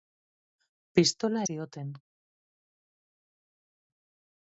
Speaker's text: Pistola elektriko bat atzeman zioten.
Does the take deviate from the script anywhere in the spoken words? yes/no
yes